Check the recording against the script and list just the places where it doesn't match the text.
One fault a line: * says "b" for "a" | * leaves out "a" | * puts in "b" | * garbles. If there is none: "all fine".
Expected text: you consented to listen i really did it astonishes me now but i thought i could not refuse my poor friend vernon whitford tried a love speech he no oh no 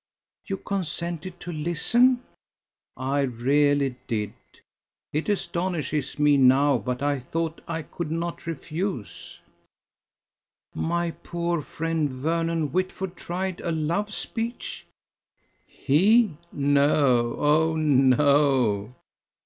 all fine